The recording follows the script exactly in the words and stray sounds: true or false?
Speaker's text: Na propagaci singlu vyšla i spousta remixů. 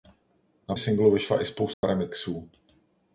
false